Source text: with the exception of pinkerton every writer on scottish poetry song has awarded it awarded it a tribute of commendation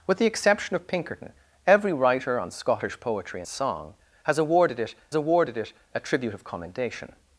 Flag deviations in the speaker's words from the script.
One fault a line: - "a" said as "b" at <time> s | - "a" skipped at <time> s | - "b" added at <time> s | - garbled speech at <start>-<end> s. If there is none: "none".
none